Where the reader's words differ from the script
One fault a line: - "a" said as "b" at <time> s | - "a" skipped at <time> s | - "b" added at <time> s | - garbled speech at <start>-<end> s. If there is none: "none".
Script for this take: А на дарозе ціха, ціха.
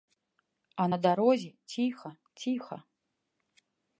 none